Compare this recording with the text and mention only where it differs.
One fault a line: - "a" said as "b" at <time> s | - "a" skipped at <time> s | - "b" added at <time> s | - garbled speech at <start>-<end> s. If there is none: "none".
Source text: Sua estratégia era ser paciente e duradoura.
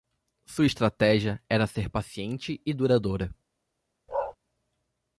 none